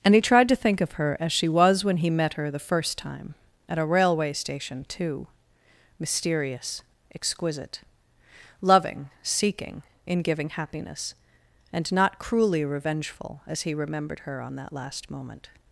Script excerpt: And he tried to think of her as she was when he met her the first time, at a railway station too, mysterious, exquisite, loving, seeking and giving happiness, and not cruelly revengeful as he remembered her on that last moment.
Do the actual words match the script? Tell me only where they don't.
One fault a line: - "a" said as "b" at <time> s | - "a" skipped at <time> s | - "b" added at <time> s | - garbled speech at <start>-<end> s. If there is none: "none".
- "and" said as "in" at 10.1 s